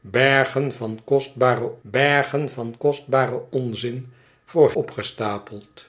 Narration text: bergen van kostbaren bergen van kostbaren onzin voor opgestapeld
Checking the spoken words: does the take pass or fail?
pass